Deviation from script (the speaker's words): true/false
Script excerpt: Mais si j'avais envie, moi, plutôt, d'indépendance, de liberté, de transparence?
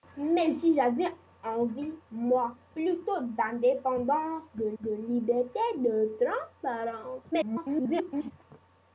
true